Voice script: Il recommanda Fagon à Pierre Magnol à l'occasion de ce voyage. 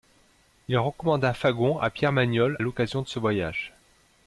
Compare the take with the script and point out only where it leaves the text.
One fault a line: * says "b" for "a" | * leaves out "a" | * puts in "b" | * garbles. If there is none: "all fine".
* leaves out "à"